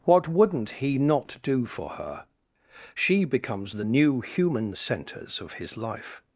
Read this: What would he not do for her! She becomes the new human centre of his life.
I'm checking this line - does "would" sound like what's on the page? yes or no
no